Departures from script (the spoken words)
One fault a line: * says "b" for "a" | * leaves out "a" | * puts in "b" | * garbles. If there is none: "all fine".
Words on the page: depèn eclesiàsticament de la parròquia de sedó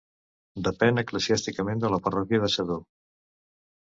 all fine